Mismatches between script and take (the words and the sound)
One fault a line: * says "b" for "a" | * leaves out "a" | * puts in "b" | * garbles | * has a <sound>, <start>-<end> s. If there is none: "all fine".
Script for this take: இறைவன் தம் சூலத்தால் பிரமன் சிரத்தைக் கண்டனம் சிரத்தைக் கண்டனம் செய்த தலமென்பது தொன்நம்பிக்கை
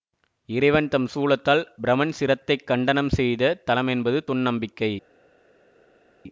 * leaves out "சிரத்தைக் கண்டனம்"